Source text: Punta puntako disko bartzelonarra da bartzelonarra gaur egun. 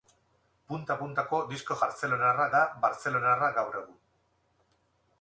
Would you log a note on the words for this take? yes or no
no